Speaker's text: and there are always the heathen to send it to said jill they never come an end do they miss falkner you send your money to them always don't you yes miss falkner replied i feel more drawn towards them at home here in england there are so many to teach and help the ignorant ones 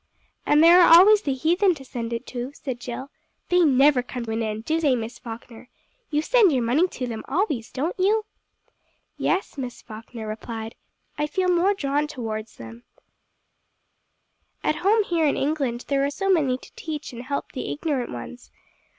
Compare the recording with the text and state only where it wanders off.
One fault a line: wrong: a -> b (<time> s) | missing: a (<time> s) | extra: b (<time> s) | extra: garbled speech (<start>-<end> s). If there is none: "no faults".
no faults